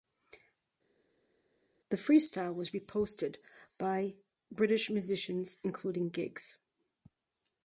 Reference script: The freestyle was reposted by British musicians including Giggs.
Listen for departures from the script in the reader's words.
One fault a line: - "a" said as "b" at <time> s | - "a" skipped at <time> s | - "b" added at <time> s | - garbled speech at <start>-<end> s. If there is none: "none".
none